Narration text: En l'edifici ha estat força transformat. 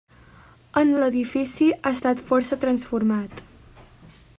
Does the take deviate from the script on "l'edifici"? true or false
false